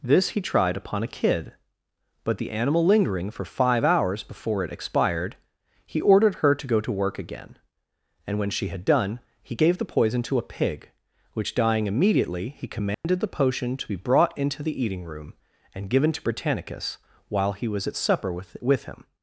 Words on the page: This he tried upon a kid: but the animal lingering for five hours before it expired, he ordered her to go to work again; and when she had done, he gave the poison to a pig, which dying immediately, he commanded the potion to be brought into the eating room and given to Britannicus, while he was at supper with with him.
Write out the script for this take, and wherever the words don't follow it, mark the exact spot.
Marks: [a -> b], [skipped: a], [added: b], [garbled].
This he tried upon a kid: but the animal lingering for five hours before it expired, he ordered her to go to work again; and when she had done, he gave the poison to a pig, which dying immediately, he commanded the potion to be brought into the eating room and given to Britannicus, while he was at supper with with him.